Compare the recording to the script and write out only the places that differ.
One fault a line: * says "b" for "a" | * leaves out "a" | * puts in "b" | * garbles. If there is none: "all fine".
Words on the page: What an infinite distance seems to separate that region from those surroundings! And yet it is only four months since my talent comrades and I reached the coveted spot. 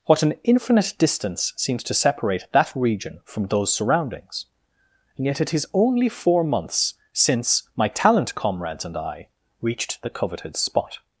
all fine